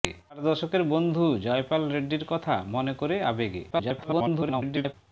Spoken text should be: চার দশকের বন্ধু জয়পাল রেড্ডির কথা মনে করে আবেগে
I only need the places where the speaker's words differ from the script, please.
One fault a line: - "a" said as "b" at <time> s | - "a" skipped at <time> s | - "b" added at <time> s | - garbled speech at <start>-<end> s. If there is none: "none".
- garbled speech at 3.7-4.9 s